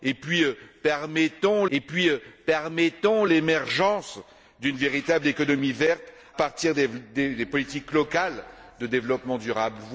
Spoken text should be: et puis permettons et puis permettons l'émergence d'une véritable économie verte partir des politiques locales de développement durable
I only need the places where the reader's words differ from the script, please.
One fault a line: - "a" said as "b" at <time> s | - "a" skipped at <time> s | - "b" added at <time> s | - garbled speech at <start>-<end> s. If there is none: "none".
none